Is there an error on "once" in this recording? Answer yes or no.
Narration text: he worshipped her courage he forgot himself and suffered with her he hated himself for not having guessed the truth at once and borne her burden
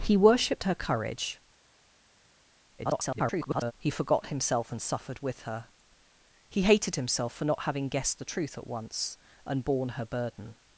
no